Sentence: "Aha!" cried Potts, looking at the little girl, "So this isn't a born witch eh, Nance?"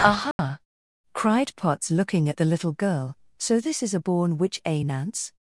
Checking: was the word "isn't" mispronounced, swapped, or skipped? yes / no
yes